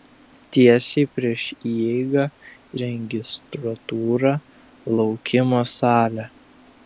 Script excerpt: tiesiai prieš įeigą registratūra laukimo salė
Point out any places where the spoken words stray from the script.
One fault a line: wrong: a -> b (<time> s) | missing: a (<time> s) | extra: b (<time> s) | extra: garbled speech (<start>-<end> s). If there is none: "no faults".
no faults